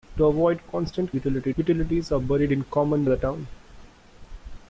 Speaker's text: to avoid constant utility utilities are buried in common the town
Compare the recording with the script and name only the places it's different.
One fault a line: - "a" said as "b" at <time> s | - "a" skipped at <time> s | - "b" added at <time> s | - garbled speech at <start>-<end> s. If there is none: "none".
none